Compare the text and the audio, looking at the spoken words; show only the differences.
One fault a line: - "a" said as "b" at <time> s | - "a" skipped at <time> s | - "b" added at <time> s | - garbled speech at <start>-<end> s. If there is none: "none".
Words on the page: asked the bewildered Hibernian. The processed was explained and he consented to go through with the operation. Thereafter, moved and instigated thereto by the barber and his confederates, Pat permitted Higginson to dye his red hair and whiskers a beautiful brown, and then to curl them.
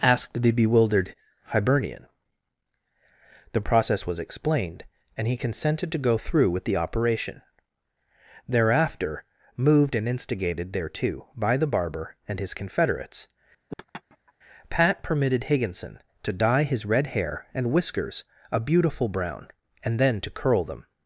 - "processed" said as "process" at 3.6 s